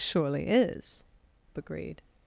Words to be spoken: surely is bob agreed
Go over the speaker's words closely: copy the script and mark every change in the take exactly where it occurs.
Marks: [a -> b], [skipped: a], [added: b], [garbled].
surely is [skipped: bob] agreed